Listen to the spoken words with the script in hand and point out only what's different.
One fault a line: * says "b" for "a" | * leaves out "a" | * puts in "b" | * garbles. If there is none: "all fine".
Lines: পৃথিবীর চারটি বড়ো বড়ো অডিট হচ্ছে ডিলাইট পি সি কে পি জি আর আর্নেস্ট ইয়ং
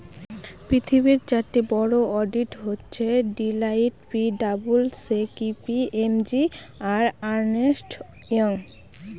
* leaves out "বড়ো"
* puts in "ডাবলু"
* puts in "এম"